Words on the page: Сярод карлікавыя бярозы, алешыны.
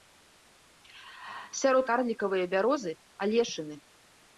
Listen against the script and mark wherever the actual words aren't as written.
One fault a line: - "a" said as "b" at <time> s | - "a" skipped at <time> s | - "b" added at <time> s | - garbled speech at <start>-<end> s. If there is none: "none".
none